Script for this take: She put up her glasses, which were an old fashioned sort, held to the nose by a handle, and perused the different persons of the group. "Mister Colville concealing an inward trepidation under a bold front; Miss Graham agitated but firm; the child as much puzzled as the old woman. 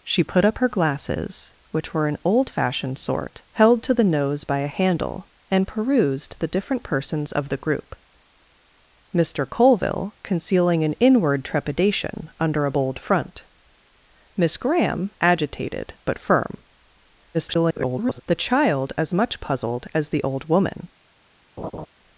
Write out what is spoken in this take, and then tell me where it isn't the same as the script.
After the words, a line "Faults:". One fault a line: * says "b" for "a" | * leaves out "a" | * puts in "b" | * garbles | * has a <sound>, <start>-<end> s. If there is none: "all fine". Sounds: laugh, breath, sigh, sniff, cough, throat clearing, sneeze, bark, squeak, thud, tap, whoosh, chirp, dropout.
She put up her glasses, which were an old fashioned sort, held to the nose by a handle, and perused the different persons of the group. "Mister Colville concealing an inward trepidation under a bold front; Miss Graham agitated but firm; [garbled] the child as much puzzled as the old woman.
Faults:
* garbles
* has a laugh, 21.6-21.9 s